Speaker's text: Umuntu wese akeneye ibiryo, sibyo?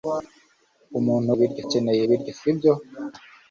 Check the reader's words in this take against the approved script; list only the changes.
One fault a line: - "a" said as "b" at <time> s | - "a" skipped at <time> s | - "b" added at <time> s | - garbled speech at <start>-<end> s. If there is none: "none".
- "wese" said as "ibiryo" at 1.3 s